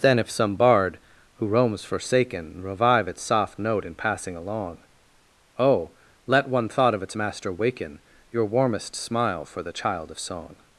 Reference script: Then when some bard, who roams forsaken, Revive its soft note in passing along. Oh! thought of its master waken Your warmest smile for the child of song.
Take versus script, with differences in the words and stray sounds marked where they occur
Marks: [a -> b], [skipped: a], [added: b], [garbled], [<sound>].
Then [when -> if] some bard, who roams forsaken, Revive its soft note in passing along. Oh! [added: let one] thought of its master waken Your warmest smile for the child of song.